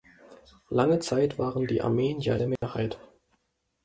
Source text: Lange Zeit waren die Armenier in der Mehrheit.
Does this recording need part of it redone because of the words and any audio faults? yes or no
yes